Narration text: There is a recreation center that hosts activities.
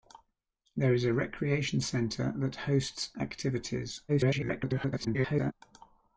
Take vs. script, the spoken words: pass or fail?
fail